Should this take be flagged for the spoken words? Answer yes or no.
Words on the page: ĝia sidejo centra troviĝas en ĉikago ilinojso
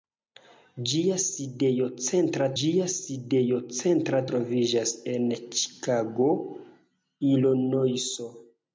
yes